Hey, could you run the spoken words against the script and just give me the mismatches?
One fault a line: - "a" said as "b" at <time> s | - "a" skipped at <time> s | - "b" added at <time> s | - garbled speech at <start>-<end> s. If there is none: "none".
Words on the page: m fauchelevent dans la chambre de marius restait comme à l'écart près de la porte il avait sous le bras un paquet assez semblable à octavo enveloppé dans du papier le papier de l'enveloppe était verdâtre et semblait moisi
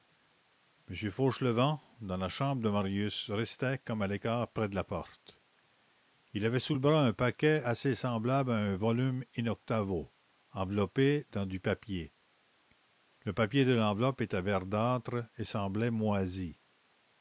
- "un volume in" added at 8.6 s